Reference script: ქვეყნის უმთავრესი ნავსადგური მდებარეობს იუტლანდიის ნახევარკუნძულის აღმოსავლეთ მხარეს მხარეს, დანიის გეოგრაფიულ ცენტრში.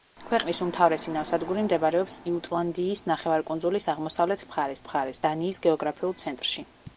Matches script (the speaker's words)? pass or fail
pass